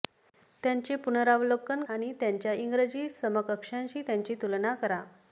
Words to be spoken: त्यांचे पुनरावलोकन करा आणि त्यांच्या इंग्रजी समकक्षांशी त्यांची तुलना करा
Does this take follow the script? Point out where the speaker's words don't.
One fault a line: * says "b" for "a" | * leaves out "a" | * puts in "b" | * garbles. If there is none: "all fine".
* leaves out "करा"